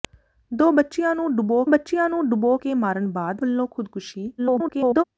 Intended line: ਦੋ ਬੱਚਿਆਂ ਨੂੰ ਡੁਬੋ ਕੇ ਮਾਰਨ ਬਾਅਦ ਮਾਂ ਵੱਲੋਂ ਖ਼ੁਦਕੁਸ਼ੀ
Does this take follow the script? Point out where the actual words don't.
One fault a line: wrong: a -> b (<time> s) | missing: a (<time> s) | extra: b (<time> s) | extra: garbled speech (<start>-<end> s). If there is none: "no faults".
extra: ਬੱਚਿਆਂ ਨੂੰ ਡੁਬੋ (1.7 s)
missing: ਮਾਂ (3.4 s)
extra: garbled speech (4.4-5.0 s)